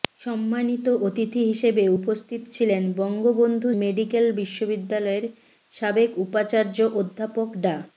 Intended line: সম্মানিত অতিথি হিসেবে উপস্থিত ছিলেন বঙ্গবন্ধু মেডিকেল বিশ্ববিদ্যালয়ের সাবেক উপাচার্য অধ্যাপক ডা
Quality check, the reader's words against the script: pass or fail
pass